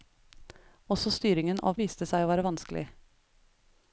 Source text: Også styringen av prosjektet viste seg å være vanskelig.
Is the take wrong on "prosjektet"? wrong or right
wrong